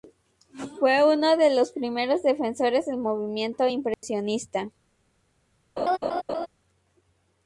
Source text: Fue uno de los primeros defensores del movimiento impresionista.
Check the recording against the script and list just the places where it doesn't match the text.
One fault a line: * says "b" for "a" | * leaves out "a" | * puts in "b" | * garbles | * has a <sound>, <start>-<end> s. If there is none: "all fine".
* has a dropout, 3.9-4.0 s
* has a laugh, 5.8-6.5 s